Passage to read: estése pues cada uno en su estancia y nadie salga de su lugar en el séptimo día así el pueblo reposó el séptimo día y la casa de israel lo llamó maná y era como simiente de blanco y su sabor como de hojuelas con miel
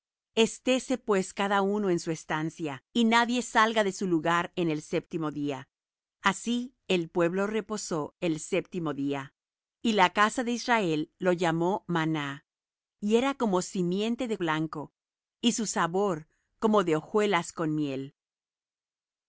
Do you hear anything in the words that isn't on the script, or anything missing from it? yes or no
no